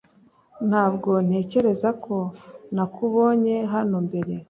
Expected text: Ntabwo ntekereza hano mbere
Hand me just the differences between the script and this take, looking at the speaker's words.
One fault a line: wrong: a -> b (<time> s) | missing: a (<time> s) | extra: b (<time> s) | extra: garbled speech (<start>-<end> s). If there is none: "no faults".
extra: ko nakubonye (2.0 s)